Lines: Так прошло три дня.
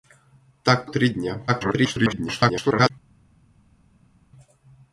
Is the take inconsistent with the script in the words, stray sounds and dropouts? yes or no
yes